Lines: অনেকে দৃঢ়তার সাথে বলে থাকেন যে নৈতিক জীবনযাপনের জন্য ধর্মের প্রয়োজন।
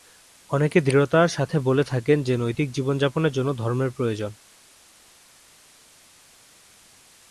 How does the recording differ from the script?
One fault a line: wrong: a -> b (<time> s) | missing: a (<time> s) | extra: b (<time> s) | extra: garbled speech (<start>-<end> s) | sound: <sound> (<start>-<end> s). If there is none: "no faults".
no faults